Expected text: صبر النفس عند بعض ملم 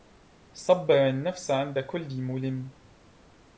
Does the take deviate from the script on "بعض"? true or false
true